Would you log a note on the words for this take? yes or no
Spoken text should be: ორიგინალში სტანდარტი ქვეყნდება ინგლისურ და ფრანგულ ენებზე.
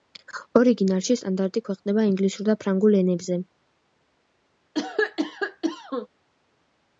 no